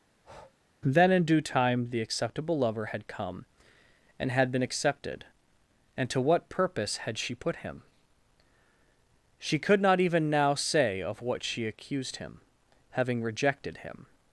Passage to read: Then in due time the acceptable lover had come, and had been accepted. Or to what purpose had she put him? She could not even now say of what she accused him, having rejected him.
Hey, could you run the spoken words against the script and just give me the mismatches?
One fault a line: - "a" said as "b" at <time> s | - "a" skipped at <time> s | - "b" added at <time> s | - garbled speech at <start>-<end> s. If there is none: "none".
- "Or" said as "And" at 6.0 s